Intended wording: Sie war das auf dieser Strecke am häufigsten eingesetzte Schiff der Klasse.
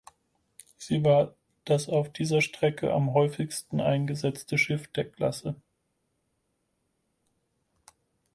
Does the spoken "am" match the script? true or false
true